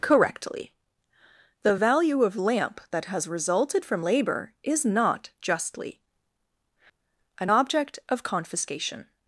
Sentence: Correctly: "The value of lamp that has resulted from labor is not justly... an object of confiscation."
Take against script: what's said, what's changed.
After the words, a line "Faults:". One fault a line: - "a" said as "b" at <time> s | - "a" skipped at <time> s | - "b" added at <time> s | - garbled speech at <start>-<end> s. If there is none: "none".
Correctly: "The value of lamp that has resulted from labor is not justly... an object of confiscation."
Faults:
none